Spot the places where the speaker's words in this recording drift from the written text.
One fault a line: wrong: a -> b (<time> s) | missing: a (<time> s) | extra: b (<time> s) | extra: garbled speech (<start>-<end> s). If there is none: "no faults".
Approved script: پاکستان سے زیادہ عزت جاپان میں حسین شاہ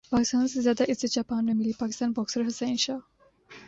extra: ملی پاکستانی باکسر (1.5 s)